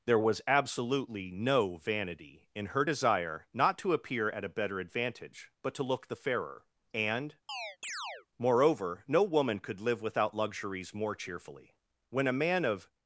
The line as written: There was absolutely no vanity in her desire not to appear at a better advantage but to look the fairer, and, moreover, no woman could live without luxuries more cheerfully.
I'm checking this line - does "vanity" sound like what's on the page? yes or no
yes